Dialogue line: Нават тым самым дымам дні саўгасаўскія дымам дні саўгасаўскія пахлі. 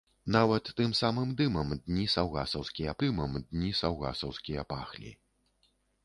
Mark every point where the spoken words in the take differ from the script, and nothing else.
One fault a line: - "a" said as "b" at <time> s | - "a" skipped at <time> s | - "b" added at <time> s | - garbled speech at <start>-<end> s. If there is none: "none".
none